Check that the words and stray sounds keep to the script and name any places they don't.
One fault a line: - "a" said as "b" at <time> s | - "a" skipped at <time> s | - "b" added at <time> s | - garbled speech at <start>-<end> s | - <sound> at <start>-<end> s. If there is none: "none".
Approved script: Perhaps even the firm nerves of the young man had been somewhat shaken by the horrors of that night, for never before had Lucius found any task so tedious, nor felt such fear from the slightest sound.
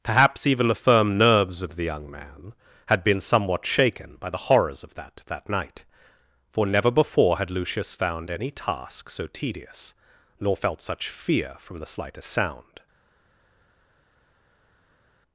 - "that" added at 5.3 s